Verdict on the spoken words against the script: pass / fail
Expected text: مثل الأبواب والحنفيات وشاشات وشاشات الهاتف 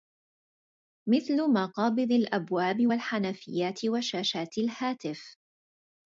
fail